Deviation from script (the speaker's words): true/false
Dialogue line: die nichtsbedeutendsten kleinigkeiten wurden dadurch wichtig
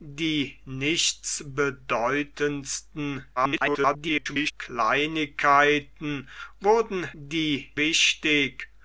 true